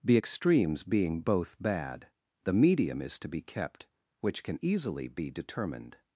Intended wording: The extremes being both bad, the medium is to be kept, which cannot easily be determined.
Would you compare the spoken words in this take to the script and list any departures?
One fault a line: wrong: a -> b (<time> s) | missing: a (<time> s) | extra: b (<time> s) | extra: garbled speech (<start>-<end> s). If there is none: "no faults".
wrong: cannot -> can (4.4 s)